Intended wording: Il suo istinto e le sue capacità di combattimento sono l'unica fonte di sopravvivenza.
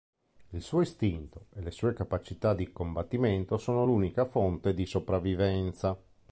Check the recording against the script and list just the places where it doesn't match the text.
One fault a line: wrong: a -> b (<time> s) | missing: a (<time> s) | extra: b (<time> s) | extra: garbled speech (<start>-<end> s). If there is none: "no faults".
no faults